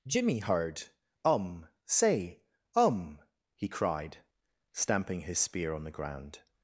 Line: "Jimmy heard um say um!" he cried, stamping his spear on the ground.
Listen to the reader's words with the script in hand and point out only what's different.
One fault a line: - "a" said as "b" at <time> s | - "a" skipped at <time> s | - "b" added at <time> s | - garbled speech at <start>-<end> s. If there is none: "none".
none